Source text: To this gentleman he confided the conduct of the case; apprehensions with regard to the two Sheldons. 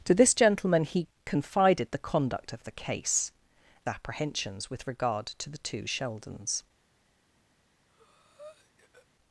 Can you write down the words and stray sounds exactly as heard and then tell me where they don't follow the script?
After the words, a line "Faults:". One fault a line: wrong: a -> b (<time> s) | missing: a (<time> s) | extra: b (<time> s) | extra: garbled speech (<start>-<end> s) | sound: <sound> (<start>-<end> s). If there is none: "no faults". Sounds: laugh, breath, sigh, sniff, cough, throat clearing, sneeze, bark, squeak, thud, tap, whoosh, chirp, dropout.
To this gentleman he confided the conduct of the case; apprehensions with regard to the two Sheldons.
Faults:
sound: breath (7.9-9.1 s)